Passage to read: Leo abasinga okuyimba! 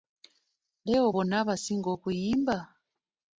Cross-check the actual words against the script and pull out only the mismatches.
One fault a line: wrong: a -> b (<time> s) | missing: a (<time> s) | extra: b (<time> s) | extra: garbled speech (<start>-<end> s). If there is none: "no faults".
extra: bonna (1.1 s)